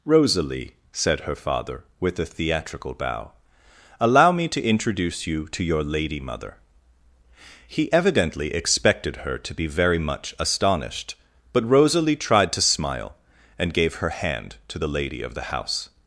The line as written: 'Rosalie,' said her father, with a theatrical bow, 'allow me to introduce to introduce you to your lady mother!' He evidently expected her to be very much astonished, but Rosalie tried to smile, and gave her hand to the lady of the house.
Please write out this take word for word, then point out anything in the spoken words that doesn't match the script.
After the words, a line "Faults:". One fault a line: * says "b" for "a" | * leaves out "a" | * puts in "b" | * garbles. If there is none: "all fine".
'Rosalie,' said her father, with a theatrical bow, 'allow me to introduce you to your lady mother!' He evidently expected her to be very much astonished, but Rosalie tried to smile, and gave her hand to the lady of the house.
Faults:
* leaves out "to introduce"